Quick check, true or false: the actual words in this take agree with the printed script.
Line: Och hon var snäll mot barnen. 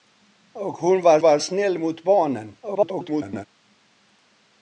false